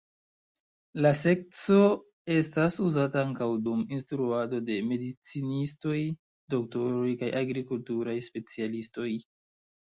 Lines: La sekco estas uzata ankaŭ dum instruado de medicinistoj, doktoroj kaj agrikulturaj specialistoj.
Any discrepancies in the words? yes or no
no